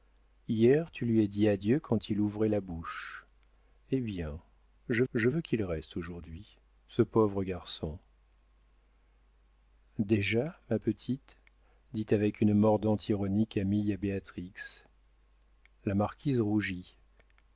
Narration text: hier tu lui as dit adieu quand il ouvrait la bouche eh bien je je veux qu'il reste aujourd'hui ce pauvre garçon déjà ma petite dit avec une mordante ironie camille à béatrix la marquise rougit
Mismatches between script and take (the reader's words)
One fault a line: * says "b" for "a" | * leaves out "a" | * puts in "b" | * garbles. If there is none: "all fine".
all fine